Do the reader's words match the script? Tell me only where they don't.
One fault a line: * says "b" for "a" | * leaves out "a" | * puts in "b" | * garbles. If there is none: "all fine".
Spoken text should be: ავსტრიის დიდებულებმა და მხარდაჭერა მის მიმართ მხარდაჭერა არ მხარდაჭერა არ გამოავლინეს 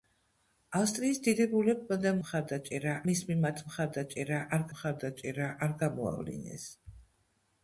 all fine